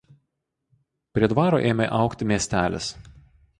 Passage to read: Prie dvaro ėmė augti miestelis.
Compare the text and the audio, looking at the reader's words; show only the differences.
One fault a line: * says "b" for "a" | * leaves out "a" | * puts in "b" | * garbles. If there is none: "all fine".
all fine